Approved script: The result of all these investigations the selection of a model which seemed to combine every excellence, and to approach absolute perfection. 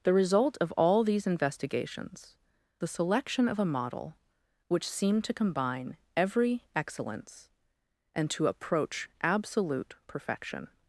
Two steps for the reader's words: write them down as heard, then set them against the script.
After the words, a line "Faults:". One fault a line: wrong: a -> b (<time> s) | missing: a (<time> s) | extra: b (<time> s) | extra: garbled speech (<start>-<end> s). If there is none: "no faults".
The result of all these investigations the selection of a model which seemed to combine every excellence, and to approach absolute perfection.
Faults:
no faults